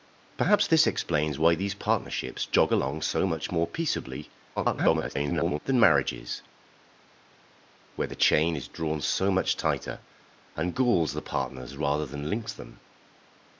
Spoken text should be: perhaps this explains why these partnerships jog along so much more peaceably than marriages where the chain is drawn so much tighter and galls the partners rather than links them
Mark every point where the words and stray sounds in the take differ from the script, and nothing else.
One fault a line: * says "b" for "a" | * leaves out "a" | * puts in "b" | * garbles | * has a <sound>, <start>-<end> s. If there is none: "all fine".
* garbles